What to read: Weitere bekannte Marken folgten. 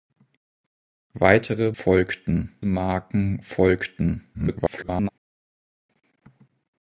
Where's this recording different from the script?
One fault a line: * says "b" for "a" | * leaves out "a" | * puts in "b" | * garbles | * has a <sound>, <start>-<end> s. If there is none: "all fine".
* says "folgten" for "bekannte"
* garbles